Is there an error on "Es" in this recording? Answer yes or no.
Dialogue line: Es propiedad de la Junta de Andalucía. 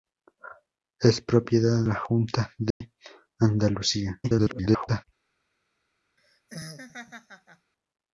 no